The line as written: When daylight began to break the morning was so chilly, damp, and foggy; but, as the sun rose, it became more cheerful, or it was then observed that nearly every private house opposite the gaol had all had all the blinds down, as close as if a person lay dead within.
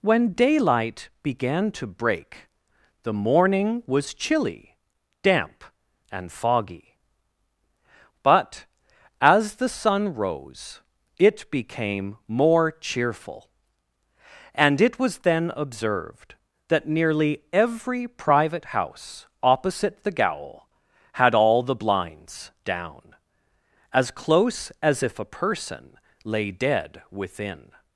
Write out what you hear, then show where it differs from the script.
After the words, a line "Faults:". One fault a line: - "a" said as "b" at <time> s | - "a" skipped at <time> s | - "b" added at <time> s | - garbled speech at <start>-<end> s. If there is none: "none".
When daylight began to break the morning was chilly, damp, and foggy; but, as the sun rose, it became more cheerful, and it was then observed that nearly every private house opposite the gaol had all the blinds down, as close as if a person lay dead within.
Faults:
- "so" skipped at 4.2 s
- "or" said as "and" at 14.6 s
- "had all" skipped at 21.6 s